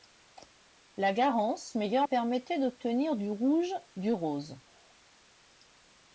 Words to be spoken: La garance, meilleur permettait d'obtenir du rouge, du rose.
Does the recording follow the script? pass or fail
pass